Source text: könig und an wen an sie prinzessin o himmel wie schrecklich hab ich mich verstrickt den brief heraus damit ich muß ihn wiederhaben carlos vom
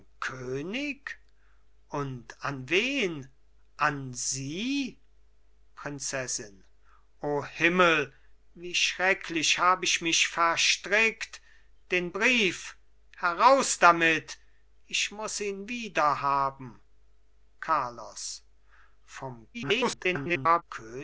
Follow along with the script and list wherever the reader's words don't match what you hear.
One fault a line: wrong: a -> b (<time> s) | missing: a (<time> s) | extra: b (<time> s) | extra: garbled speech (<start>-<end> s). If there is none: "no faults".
extra: garbled speech (19.5-20.6 s)